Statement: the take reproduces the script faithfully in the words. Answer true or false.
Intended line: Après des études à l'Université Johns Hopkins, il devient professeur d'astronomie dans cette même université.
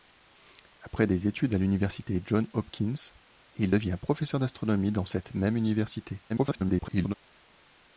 false